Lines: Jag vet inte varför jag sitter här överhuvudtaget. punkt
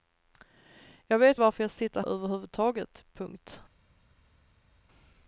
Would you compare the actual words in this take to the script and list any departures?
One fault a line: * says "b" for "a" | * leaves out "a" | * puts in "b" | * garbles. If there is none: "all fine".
* leaves out "inte"
* leaves out "här"